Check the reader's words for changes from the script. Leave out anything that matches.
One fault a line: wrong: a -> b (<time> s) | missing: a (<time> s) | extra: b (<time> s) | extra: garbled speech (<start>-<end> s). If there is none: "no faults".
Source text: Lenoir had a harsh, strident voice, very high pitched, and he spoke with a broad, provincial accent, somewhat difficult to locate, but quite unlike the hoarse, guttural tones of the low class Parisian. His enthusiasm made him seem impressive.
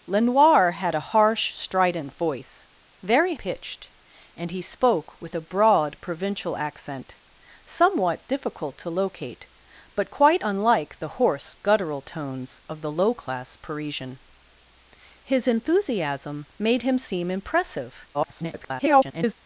missing: high (3.4 s)
extra: garbled speech (18.1-19.3 s)